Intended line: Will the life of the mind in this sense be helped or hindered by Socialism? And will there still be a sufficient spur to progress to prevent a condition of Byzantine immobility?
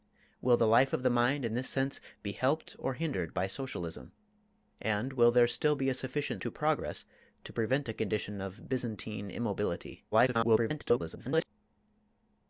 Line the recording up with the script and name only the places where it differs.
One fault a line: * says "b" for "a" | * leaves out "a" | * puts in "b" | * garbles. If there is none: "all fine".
* leaves out "spur"
* garbles